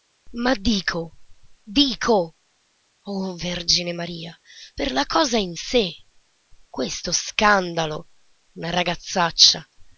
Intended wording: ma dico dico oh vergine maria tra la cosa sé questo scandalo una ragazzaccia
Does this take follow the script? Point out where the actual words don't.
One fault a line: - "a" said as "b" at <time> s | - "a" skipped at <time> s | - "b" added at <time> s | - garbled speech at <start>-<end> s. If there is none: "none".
- "tra" said as "per" at 4.7 s
- "in" added at 5.4 s